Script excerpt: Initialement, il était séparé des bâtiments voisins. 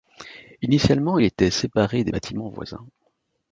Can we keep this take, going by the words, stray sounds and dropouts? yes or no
yes